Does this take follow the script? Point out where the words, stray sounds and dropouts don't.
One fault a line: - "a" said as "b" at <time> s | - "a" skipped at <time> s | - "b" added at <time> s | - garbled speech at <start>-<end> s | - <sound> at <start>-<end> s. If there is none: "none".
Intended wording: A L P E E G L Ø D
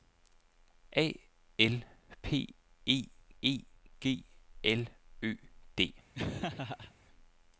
- laugh at 6.1-6.9 s